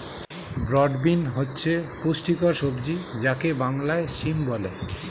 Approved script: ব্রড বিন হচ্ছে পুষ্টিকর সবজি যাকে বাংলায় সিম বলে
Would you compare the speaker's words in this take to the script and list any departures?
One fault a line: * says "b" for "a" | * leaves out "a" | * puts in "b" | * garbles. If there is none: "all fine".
all fine